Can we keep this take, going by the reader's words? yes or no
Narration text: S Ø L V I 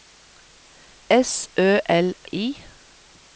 no